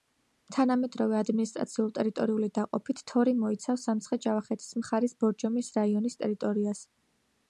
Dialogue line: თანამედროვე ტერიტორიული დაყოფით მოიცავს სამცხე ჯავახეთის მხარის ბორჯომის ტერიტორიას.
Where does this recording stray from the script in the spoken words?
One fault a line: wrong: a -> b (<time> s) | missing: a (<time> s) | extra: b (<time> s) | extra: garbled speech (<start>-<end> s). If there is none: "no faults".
extra: ადმინისტრაციულ (1.2 s)
extra: თორი (3.1 s)
extra: რაიონის (5.8 s)